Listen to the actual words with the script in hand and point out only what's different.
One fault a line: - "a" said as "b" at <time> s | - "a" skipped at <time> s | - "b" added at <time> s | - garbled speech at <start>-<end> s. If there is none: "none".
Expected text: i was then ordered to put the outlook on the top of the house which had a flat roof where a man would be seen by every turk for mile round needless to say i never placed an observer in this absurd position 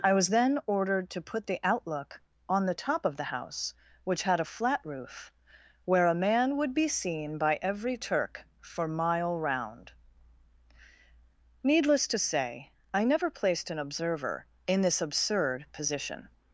none